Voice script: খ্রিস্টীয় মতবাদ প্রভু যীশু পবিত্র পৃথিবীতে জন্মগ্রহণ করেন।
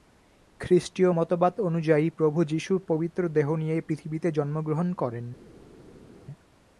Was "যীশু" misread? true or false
false